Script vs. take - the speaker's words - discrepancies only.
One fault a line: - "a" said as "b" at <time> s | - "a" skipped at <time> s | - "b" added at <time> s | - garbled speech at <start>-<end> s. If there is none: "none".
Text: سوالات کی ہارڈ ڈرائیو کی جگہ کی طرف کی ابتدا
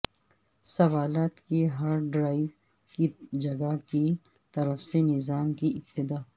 - "سے نظام" added at 4.8 s